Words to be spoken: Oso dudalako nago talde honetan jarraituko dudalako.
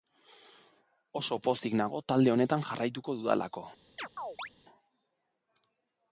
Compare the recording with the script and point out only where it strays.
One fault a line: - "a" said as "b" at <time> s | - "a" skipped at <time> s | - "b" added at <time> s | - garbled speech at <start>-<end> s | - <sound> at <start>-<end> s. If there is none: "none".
- "dudalako" said as "pozik" at 1.5 s
- chirp at 4.0-4.5 s